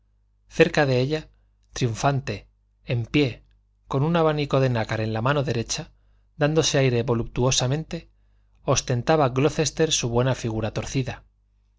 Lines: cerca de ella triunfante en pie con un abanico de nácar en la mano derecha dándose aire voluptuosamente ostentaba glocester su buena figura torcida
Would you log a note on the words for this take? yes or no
no